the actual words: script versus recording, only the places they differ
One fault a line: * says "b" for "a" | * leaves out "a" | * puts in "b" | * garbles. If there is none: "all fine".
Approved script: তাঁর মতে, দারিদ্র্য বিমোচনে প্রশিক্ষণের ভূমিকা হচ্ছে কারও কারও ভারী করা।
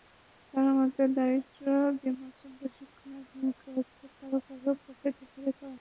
* puts in "পকেট"